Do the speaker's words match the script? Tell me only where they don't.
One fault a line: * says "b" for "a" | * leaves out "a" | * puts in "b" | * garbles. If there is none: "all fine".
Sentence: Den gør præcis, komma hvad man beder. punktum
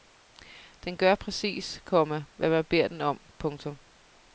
* puts in "den om"